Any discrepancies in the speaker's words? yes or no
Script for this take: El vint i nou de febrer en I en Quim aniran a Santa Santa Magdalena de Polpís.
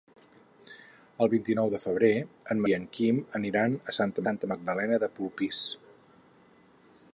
no